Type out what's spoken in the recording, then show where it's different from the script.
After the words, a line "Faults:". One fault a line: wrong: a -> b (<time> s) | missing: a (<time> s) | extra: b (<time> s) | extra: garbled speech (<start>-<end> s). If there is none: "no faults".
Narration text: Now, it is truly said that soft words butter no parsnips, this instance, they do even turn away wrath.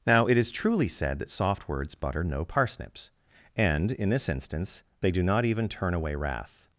Now, it is truly said that soft words butter no parsnips, and, in this instance, they do not even turn away wrath.
Faults:
extra: and in (3.5 s)
extra: not (5.2 s)